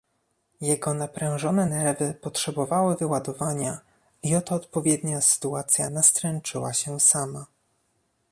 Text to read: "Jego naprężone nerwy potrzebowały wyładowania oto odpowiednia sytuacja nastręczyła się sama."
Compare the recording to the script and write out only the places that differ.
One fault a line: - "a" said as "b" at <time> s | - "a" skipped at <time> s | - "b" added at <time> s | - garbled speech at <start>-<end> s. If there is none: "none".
- "i" added at 4.2 s